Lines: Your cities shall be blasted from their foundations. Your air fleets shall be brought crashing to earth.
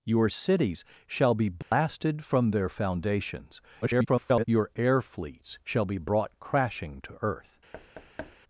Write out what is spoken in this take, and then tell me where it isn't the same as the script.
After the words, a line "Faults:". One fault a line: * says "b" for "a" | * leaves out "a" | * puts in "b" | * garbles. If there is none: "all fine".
Your cities shall be blasted from their foundations. [garbled] Your air fleets shall be brought crashing to earth.
Faults:
* garbles